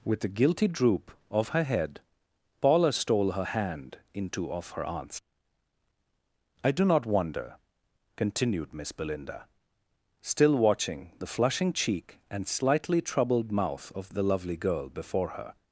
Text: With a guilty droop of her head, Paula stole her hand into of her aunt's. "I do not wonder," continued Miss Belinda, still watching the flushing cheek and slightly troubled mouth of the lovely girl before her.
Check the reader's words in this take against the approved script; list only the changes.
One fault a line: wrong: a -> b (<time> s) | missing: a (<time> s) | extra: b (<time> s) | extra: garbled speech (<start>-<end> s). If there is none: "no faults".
no faults